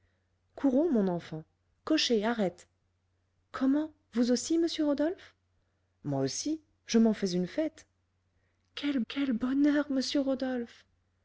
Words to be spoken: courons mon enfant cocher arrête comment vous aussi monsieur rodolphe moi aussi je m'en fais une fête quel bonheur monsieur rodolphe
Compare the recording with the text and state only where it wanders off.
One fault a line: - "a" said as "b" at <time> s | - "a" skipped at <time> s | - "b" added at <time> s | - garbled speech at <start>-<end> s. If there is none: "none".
- "quel" added at 9.1 s